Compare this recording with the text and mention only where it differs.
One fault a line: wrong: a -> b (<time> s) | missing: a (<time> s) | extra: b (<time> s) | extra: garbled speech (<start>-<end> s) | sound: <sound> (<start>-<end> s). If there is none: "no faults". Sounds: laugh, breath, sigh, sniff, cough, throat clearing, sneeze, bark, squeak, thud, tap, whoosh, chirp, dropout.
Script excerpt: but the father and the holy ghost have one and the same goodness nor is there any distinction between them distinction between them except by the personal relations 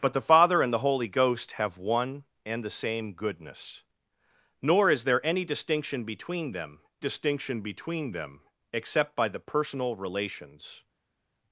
no faults